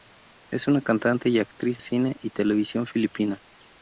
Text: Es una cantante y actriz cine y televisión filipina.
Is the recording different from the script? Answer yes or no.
no